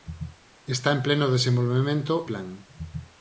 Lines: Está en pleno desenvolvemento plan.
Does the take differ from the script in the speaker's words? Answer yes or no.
no